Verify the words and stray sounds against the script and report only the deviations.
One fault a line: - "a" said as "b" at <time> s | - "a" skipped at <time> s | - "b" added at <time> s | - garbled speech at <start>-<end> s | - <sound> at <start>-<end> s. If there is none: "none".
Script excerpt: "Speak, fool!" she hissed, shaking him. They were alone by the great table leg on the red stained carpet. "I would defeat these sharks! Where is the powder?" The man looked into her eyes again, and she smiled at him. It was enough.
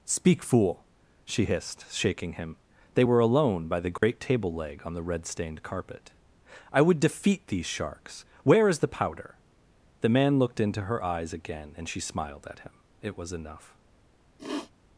- dropout at 4.0-4.0 s
- sniff at 14.4-14.7 s